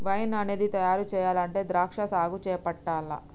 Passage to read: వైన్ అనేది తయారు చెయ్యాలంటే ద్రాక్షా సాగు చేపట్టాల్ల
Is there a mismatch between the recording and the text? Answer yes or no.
no